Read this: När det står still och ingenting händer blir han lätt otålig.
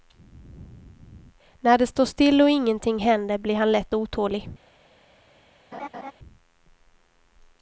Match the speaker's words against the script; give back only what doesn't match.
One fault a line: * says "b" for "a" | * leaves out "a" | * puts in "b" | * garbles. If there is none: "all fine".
all fine